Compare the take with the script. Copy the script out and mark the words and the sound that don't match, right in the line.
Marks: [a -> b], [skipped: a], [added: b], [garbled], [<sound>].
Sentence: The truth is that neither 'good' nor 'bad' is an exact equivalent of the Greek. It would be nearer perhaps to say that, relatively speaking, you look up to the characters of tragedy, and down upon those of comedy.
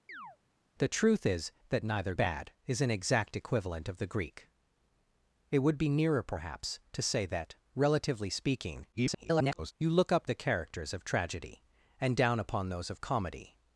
[chirp] The truth is that neither [skipped: 'good' nor] 'bad' is an exact equivalent of the Greek. It would be nearer perhaps to say that, relatively speaking, [garbled] you look up [skipped: to] the characters of tragedy, and down upon those of comedy.